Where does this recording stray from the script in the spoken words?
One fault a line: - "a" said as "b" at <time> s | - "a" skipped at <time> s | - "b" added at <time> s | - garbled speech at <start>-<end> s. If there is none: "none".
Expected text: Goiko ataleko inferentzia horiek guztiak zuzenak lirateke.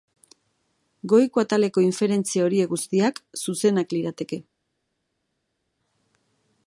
none